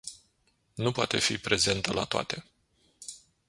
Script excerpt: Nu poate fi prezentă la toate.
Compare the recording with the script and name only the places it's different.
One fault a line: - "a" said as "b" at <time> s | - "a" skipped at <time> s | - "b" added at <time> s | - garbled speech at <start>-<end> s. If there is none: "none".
none